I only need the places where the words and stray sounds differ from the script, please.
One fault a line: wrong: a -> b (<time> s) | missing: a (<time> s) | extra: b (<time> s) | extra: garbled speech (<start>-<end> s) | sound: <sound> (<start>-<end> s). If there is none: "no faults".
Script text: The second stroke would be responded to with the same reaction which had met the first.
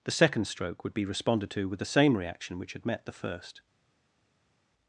no faults